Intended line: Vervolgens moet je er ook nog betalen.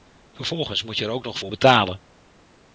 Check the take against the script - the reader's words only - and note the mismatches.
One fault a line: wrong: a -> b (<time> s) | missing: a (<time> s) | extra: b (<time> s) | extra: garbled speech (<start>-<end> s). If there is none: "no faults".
extra: voor (1.4 s)